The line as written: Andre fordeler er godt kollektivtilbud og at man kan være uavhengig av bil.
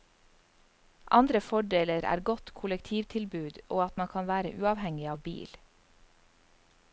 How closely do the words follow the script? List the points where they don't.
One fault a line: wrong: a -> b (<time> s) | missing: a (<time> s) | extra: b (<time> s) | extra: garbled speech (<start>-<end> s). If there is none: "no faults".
no faults